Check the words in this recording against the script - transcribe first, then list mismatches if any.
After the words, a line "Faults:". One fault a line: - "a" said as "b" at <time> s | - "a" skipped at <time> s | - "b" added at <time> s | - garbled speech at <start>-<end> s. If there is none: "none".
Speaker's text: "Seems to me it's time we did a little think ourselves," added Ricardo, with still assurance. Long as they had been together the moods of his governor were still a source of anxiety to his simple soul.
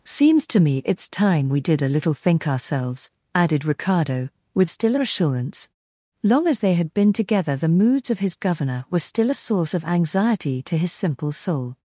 "Seems to me it's time we did a little think ourselves," added Ricardo, with still assurance. Long as they had been together the moods of his governor were still a source of anxiety to his simple soul.
Faults:
none